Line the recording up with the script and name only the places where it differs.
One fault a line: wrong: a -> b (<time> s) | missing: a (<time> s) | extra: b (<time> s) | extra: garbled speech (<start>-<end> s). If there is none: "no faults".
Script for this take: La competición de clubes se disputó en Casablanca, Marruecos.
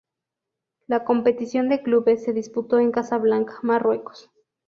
no faults